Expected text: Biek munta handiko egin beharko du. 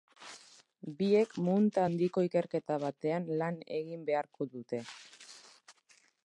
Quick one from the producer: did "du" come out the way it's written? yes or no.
no